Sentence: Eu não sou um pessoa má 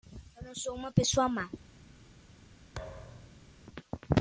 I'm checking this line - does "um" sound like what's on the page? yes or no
no